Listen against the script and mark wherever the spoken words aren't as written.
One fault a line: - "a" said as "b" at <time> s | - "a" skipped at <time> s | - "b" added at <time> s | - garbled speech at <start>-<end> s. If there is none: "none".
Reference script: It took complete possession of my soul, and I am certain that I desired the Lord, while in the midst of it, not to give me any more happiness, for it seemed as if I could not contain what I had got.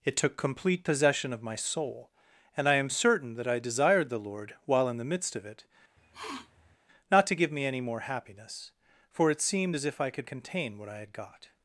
- "not" skipped at 10.3 s